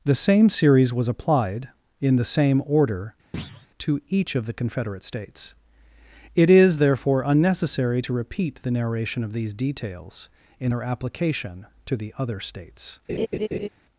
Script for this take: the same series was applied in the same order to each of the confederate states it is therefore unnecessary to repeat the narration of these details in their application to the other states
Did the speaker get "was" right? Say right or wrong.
right